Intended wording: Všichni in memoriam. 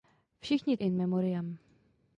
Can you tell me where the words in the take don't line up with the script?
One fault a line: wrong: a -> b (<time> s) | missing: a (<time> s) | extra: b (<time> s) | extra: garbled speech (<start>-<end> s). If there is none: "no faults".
no faults